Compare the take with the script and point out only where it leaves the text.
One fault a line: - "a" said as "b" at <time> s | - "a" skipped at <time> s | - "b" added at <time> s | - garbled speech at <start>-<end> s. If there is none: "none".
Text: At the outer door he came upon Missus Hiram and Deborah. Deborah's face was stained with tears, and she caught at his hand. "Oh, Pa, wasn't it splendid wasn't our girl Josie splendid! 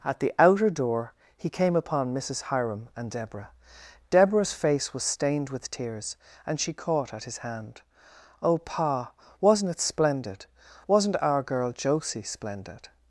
none